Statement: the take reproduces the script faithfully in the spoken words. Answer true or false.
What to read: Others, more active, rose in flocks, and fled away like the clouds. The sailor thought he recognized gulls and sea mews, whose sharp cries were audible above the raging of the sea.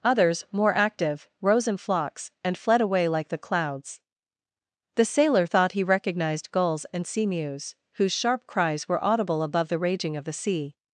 true